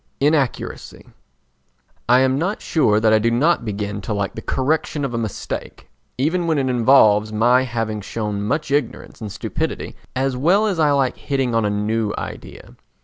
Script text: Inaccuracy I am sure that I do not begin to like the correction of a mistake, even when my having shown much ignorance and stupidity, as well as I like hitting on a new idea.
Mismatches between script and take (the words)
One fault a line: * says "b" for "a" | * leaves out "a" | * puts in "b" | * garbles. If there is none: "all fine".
* puts in "not"
* puts in "it involves"